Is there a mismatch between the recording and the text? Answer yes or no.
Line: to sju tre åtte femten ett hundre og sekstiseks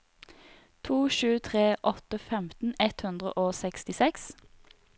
no